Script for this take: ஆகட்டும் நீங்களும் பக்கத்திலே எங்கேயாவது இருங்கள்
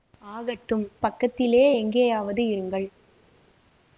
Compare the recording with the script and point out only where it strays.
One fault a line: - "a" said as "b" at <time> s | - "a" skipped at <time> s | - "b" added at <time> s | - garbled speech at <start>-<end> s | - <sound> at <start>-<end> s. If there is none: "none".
- "நீங்களும்" skipped at 0.8 s